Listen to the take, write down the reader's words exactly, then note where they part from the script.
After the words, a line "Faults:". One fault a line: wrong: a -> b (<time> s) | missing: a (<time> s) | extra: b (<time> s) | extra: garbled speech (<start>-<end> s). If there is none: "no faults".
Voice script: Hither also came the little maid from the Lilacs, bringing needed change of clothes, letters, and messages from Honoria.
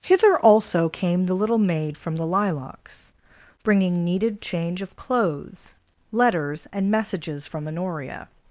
Hither also came the little maid from the Lilacs, bringing needed change of clothes, letters, and messages from Honoria.
Faults:
no faults